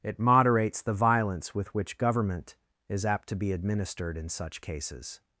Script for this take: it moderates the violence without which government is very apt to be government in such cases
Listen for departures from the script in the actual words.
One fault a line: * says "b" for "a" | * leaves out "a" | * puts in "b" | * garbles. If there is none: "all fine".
* says "with" for "without"
* leaves out "very"
* says "administered" for "government"